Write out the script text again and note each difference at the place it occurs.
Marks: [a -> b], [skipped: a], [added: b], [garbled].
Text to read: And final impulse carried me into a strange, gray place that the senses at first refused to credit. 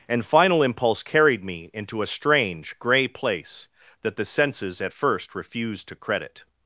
And final impulse carried me into a strange, gray place that the senses at first refused to credit.